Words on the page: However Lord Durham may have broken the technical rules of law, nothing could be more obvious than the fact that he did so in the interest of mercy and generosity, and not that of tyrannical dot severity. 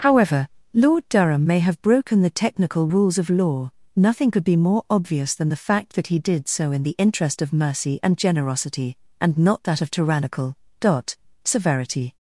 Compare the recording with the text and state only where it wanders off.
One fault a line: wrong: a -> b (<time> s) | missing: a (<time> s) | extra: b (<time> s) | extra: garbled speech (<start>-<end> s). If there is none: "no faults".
no faults